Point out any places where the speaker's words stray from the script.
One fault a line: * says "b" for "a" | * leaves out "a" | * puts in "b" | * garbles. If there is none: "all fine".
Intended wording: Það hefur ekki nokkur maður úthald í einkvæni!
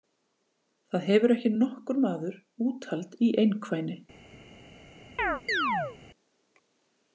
all fine